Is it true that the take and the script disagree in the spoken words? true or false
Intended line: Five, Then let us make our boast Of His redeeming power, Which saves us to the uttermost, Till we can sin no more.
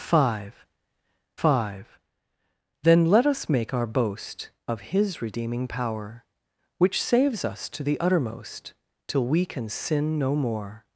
true